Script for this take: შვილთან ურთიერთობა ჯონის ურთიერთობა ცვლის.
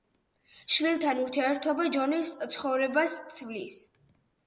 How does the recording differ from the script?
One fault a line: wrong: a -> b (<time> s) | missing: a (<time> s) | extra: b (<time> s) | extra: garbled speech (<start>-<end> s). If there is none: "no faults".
wrong: ურთიერთობა -> ცხოვრებას (2.6 s)